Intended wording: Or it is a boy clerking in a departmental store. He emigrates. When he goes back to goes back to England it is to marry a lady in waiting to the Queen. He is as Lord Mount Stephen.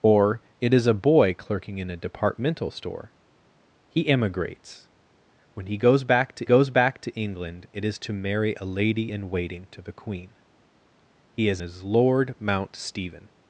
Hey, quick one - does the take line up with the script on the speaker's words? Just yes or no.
yes